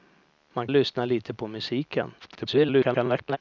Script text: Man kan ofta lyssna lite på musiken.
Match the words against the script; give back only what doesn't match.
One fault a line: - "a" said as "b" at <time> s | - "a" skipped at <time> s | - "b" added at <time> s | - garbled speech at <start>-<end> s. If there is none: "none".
- "kan ofta" skipped at 0.7 s
- garbled speech at 2.2-3.4 s